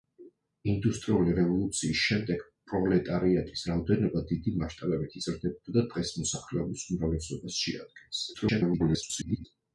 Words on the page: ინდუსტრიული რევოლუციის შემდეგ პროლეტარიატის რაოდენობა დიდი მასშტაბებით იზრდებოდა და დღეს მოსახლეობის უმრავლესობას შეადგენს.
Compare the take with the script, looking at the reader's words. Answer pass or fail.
fail